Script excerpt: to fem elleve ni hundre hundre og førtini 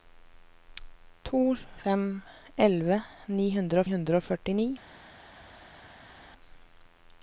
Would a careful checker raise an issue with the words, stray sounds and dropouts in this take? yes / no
no